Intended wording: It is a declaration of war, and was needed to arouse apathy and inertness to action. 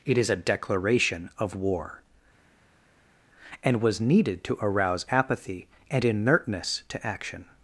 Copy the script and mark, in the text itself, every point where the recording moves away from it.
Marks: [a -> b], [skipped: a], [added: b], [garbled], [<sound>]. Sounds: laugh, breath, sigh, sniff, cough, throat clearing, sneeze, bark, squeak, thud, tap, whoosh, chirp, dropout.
It is a declaration of war, and was needed to arouse apathy and inertness to action.